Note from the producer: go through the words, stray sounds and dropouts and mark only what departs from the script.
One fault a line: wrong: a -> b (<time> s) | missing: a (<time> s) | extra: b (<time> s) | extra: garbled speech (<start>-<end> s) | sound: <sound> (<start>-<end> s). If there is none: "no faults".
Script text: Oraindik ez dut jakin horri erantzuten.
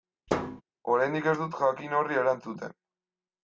sound: thud (0.3-0.6 s)